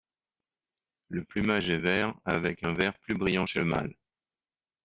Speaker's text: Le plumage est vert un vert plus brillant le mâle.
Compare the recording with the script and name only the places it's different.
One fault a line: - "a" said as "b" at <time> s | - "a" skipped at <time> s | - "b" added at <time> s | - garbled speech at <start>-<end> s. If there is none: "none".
- "avec" added at 2.2 s
- "chez" added at 3.4 s